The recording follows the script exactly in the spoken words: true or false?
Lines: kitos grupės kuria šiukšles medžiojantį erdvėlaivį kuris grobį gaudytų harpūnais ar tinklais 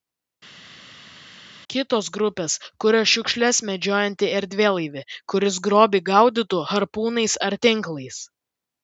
true